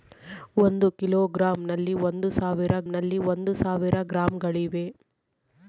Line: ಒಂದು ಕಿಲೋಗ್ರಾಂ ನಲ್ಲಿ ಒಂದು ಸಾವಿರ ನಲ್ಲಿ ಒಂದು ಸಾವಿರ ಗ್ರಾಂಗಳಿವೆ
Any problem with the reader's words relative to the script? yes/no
no